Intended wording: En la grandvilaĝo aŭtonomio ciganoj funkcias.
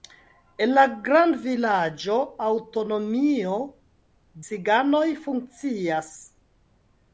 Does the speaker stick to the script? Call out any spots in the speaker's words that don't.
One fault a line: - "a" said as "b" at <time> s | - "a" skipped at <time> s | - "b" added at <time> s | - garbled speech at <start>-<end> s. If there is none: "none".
none